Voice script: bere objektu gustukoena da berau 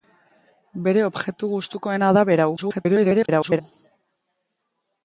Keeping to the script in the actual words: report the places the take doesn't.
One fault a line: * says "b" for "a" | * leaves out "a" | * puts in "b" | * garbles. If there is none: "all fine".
* garbles